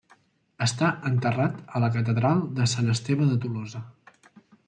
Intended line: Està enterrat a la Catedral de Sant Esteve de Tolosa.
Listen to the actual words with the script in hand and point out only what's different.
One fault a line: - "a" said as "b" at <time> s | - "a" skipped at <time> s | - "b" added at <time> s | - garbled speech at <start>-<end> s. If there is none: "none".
none